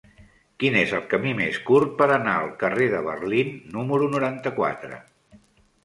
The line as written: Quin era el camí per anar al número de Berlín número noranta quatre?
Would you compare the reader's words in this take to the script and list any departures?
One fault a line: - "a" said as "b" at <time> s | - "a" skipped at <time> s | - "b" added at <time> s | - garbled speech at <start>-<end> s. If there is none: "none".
- "era" said as "és" at 0.8 s
- "més curt" added at 1.4 s
- "número" said as "carrer" at 2.6 s